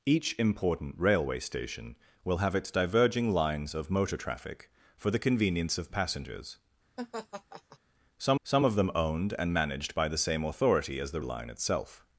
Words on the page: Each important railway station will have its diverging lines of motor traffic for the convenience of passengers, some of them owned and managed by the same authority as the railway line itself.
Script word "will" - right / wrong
right